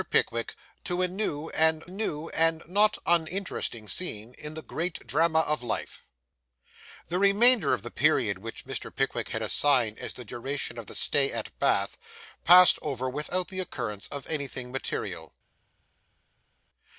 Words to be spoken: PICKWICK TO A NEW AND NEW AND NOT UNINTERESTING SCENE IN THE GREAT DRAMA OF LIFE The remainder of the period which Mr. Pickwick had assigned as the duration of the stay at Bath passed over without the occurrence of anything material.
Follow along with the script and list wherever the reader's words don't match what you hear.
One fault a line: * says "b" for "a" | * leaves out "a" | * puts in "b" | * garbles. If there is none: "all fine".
all fine